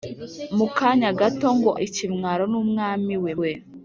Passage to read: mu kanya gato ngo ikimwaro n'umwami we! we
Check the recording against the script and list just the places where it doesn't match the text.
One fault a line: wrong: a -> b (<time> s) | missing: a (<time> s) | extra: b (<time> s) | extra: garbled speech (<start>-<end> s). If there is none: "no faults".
no faults